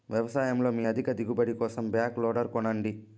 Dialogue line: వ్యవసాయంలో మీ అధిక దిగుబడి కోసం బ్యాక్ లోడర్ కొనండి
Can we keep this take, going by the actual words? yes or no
yes